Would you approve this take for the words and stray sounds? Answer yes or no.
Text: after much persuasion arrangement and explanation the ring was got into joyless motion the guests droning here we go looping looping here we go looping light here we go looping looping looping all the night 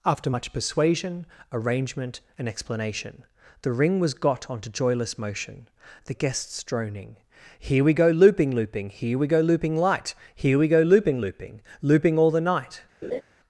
no